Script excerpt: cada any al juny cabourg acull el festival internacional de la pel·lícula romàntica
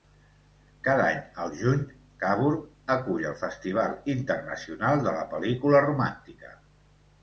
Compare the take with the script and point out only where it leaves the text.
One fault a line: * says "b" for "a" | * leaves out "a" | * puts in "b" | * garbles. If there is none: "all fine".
all fine